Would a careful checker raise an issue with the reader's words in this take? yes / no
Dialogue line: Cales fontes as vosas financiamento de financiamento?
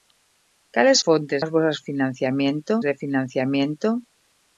no